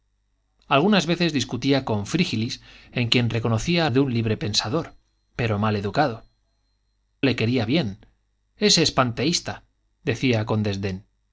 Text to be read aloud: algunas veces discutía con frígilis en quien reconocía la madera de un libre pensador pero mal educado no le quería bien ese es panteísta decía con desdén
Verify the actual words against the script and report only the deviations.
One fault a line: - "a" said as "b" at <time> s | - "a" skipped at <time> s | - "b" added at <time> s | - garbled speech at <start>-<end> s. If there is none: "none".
- "la madera" skipped at 3.9 s
- "no" skipped at 6.2 s